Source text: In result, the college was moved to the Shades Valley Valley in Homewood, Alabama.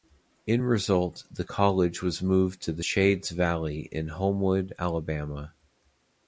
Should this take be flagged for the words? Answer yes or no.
yes